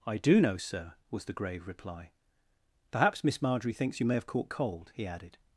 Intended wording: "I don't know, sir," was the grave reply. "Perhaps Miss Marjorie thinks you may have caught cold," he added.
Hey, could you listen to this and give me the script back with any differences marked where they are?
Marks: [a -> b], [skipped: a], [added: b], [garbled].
"I [don't -> do] know, sir," was the grave reply. "Perhaps Miss Marjorie thinks you may have caught cold," he added.